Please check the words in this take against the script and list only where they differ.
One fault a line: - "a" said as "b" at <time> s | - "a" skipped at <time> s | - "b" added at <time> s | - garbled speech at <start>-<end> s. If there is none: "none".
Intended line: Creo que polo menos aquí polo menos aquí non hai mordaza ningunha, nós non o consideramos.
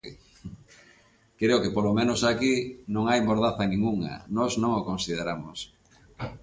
- "polo menos aquí" skipped at 2.5 s